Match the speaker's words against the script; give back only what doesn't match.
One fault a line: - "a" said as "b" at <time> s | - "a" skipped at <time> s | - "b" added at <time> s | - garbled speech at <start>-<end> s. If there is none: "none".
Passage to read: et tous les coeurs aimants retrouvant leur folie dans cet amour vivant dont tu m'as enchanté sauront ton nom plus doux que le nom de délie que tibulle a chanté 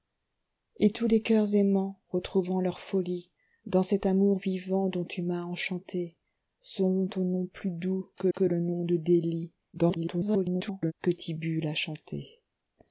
- "que" added at 8.3 s
- garbled speech at 9.7-10.9 s